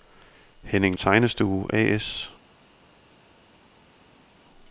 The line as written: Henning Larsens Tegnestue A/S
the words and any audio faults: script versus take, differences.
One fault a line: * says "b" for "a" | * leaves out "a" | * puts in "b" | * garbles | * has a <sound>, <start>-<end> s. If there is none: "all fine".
* leaves out "Larsens"